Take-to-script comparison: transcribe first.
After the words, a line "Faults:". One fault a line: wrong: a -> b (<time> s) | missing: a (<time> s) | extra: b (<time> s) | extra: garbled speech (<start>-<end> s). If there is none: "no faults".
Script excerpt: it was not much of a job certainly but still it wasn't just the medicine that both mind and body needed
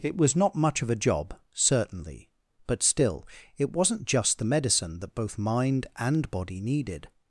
it was not much of a job certainly but still it wasn't just the medicine that both mind and body needed
Faults:
no faults